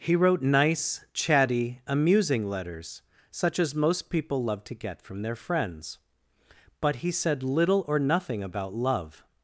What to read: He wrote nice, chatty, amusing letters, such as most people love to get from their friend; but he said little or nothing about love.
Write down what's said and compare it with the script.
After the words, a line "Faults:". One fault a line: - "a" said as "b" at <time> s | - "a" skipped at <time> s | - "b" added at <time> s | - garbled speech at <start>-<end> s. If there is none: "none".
He wrote nice, chatty, amusing letters, such as most people love to get from their friends; but he said little or nothing about love.
Faults:
- "friend" said as "friends" at 5.4 s